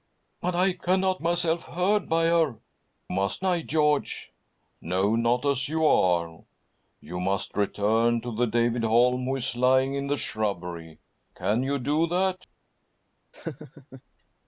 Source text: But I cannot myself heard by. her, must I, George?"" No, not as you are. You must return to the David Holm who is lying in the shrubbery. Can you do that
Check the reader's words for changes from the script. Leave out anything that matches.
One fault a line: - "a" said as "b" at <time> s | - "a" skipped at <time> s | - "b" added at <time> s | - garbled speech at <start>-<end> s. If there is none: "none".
none